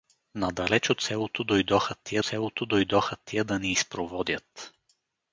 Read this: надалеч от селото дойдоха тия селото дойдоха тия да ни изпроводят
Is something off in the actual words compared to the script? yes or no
no